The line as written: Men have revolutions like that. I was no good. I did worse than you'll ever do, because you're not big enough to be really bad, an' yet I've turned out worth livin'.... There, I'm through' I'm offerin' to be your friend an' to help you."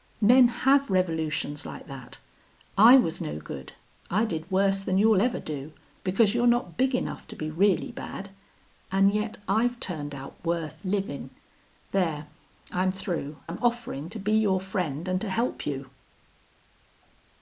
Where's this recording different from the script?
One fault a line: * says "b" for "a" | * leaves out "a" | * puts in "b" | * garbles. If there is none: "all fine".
all fine